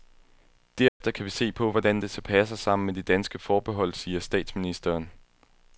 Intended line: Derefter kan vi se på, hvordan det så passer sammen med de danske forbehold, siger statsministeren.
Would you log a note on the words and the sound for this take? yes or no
yes